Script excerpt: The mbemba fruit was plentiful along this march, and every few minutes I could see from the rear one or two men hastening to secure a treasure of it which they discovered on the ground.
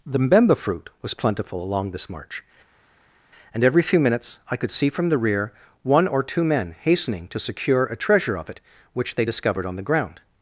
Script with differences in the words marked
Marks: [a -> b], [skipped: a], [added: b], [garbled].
The mbemba fruit was plentiful along this march, and every few minutes I could see from the rear one or two men hastening to secure a treasure of it which they discovered on the ground.